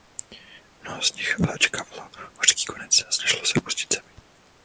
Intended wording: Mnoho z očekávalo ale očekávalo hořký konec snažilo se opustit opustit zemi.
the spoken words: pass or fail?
fail